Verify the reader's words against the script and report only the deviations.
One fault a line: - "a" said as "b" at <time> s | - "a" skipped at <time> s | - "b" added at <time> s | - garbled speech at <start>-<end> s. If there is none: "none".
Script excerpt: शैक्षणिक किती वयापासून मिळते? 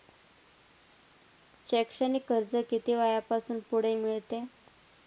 - "कर्ज" added at 2.3 s
- "पुढे" added at 3.7 s